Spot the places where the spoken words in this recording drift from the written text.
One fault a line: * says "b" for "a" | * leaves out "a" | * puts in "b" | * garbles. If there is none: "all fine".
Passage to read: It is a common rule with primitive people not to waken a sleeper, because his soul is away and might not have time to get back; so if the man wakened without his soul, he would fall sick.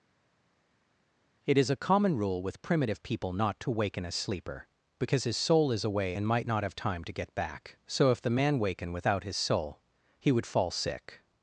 * says "waken" for "wakened"